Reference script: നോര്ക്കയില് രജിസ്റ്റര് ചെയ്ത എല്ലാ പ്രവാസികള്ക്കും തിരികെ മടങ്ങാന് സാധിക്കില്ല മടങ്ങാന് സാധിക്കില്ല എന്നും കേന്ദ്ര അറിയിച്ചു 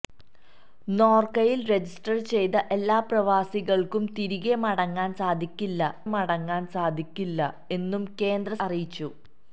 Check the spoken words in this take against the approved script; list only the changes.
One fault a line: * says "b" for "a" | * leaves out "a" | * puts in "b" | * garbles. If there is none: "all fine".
all fine